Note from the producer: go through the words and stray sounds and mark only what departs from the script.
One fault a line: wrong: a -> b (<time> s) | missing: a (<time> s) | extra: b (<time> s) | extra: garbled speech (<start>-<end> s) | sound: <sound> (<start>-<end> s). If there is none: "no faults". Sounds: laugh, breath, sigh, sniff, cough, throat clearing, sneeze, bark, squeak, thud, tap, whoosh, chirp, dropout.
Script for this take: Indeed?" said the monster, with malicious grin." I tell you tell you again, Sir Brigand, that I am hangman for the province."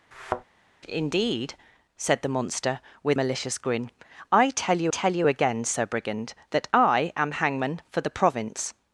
sound: thud (0.1-0.4 s)